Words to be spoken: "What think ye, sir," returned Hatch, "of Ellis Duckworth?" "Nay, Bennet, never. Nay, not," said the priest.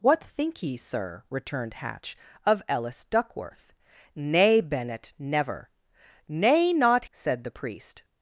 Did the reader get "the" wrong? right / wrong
right